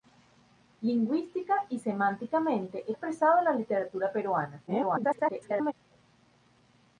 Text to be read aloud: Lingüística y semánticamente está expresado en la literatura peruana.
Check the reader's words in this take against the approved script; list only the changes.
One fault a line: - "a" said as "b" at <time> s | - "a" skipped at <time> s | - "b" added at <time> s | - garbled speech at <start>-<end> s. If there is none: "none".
- "está" skipped at 2.9 s
- garbled speech at 4.7-5.7 s